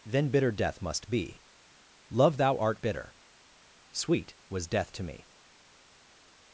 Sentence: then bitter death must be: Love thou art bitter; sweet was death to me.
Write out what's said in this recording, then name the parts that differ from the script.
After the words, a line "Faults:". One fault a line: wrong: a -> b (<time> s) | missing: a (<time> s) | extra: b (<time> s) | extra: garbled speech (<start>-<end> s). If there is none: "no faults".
then bitter death must be: Love thou art bitter; sweet was death to me.
Faults:
no faults